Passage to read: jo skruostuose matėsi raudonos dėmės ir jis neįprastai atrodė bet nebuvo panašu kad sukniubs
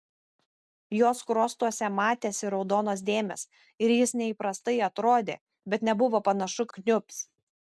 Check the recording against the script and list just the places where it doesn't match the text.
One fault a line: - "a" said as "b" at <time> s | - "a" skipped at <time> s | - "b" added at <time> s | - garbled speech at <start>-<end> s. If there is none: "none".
- "kad" skipped at 6.7 s